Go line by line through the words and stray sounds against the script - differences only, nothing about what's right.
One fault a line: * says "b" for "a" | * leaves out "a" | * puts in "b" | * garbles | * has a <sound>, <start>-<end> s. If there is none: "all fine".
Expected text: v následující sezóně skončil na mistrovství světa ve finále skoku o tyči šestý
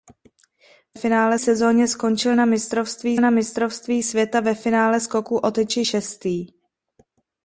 * says "finále" for "následující"
* puts in "na mistrovství"